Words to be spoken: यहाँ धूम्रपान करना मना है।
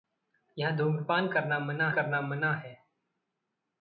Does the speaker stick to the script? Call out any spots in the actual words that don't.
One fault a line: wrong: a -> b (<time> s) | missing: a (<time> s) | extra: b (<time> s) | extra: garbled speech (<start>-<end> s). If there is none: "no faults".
extra: करना मना (1.9 s)